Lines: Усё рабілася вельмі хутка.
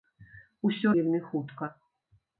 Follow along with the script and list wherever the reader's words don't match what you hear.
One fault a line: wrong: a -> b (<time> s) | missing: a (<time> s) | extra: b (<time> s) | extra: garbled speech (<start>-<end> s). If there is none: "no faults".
missing: рабілася (0.9 s)